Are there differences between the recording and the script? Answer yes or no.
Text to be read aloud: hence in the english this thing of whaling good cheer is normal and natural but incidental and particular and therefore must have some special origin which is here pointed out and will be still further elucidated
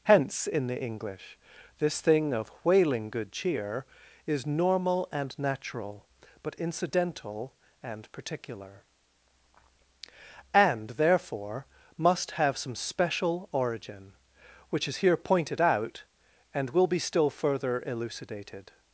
no